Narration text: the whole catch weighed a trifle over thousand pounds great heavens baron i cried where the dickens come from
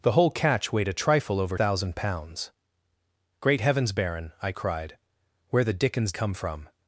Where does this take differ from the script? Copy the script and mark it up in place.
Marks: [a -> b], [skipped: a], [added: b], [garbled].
the whole catch weighed a trifle over thousand pounds great heavens baron i cried where the dickens come from